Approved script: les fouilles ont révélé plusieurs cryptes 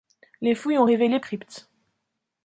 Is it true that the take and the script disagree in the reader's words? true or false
true